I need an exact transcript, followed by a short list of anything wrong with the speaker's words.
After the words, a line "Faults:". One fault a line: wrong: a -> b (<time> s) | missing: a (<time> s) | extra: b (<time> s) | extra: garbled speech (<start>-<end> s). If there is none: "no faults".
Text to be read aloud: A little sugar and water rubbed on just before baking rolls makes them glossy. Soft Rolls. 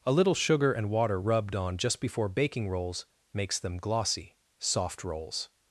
A little sugar and water rubbed on just before baking rolls makes them glossy. Soft Rolls.
Faults:
no faults